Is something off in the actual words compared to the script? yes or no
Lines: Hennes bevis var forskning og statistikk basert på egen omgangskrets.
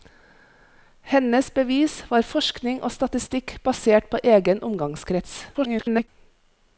yes